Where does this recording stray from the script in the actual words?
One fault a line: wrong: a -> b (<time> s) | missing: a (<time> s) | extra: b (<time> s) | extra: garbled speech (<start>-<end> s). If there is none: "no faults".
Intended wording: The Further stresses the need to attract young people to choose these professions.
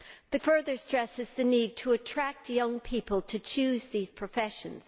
no faults